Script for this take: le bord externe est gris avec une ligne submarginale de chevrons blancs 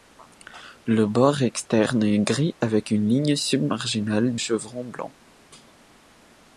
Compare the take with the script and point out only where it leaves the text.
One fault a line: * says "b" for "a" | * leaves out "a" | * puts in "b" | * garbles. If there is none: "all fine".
* leaves out "de"